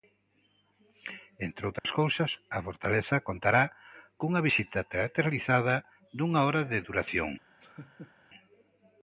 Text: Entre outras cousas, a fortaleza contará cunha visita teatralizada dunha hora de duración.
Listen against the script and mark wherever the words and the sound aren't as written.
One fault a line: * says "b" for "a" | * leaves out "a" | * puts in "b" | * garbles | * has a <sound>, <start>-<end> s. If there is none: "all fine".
* has a dropout, 1.8-1.8 s
* has a laugh, 7.6-8.1 s